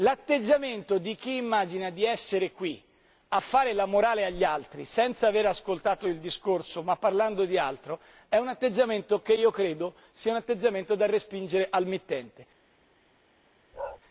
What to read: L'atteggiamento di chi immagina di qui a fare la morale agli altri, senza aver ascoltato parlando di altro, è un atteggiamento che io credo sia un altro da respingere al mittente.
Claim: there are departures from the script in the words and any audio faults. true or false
true